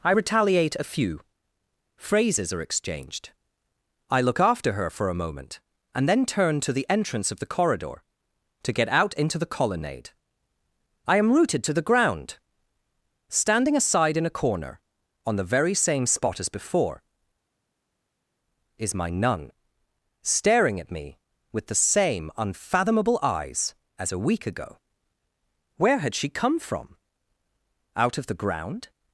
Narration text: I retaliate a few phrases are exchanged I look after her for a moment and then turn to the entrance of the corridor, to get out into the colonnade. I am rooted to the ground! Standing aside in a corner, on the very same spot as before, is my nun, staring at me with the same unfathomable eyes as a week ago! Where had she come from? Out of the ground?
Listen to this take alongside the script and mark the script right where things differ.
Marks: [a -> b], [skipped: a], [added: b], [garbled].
I retaliate a few phrases are exchanged I look after her for a moment and then turn to the entrance of the corridor, to get out into the colonnade. I am rooted to the ground! Standing aside in a corner, on the very same spot as before, is my nun, staring at me with the same unfathomable eyes as a week ago! Where had she come from? Out of the ground?